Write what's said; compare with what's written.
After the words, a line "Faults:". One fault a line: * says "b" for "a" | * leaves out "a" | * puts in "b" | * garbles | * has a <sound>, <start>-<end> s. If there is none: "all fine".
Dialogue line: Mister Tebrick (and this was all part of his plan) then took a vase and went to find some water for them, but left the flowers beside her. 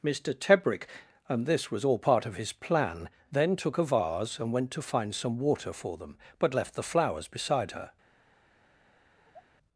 Mister Tebrick (and this was all part of his plan) then took a vase and went to find some water for them, but left the flowers beside her.
Faults:
* has a sigh, 9.2-9.5 s